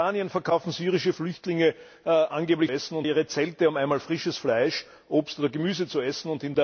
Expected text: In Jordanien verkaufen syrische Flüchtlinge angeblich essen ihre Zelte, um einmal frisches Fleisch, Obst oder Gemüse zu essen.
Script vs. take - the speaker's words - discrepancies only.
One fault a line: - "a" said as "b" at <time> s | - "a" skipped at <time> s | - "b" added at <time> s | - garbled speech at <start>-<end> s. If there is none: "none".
none